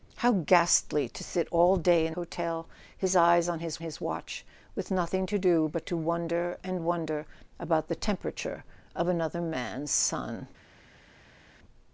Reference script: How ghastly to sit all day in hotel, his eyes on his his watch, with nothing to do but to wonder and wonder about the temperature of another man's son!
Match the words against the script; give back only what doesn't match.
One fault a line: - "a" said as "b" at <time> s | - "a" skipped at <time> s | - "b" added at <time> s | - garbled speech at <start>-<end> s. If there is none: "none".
none